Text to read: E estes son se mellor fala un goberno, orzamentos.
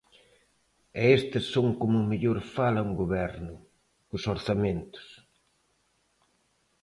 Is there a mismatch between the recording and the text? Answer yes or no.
yes